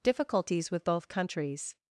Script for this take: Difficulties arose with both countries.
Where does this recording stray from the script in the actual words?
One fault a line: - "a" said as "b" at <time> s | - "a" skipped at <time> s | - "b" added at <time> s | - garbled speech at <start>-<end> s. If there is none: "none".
- "arose" skipped at 0.7 s